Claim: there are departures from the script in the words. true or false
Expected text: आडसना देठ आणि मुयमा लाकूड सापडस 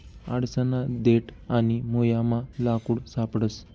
false